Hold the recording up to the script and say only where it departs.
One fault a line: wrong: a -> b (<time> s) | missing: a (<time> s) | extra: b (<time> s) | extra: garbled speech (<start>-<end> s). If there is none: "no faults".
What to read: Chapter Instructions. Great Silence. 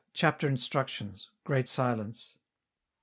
no faults